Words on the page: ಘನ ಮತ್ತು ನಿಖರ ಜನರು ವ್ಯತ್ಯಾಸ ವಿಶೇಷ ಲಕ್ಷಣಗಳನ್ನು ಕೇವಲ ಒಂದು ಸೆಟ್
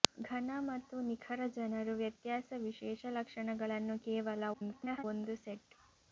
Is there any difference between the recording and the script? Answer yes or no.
yes